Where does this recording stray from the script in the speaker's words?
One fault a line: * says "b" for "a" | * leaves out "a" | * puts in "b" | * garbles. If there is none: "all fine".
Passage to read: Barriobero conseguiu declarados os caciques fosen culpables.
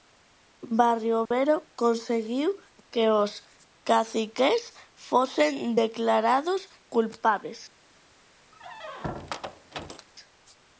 * says "que" for "declarados"
* puts in "declarados"